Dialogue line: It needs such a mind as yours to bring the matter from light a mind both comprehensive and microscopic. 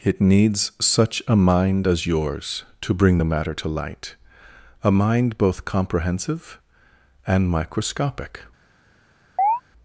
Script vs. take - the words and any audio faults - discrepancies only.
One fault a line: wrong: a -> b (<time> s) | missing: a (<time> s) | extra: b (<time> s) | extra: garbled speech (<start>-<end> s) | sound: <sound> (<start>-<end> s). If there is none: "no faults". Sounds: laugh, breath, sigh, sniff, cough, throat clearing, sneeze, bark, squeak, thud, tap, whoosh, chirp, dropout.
wrong: from -> to (3.5 s)
sound: chirp (9.4-9.6 s)